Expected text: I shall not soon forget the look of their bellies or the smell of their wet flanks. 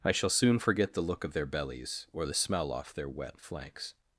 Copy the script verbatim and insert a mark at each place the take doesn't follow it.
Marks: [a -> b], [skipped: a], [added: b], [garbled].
I shall [skipped: not] soon forget the look of their bellies or the smell [of -> off] their wet flanks.